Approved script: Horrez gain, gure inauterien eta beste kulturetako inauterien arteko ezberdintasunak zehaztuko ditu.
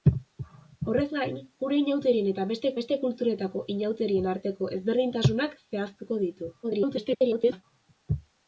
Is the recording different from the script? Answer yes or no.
yes